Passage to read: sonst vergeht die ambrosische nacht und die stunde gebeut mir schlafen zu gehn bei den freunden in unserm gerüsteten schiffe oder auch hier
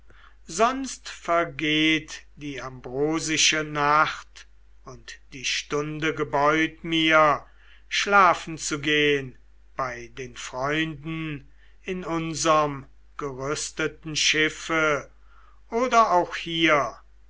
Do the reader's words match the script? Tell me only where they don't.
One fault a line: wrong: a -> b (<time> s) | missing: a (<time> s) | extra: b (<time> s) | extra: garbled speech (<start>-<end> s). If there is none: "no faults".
no faults